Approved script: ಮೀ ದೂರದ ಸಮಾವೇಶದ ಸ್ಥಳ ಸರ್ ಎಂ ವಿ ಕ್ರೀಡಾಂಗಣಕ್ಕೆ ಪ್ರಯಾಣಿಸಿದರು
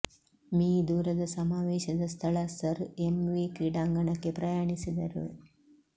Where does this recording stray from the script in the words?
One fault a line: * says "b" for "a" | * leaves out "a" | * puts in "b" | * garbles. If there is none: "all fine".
all fine